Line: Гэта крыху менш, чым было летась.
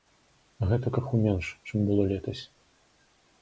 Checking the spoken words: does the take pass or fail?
pass